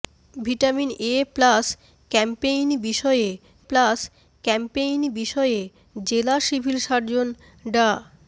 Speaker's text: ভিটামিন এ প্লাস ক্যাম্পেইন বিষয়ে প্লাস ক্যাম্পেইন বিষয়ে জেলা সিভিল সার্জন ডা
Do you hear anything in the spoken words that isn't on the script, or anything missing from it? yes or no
no